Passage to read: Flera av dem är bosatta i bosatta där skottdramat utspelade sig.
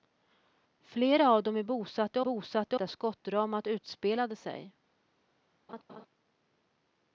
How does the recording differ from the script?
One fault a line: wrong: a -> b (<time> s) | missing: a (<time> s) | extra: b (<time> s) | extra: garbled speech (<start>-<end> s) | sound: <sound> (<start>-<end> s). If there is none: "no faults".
sound: laugh (5.7-6.1 s)